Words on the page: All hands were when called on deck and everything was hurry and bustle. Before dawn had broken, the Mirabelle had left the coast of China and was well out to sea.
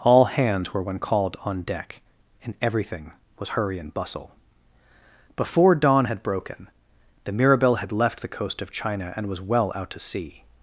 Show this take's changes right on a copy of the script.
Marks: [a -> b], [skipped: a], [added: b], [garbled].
All hands were when called on deck and everything was hurry and bustle. Before dawn had broken, the Mirabelle had left the coast of China and was well out to sea.